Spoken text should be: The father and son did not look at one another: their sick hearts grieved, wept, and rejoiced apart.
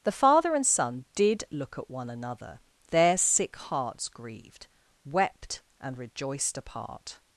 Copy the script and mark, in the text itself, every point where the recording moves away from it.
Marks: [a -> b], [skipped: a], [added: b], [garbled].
The father and son did [skipped: not] look at one another: their sick hearts grieved, wept, and rejoiced apart.